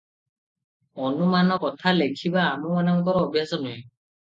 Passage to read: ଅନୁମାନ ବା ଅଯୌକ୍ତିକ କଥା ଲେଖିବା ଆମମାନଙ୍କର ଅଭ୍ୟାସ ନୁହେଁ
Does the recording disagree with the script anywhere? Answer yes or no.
yes